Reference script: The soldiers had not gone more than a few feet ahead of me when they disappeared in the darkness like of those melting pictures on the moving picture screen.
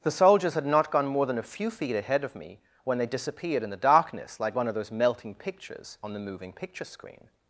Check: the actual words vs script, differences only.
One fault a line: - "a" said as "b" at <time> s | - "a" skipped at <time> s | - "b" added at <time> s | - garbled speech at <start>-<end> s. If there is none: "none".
- "one" added at 4.5 s